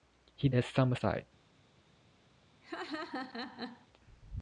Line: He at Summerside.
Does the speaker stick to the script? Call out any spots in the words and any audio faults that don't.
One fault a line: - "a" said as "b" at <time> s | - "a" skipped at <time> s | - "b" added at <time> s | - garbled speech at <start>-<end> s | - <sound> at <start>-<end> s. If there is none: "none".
- laugh at 2.6-3.9 s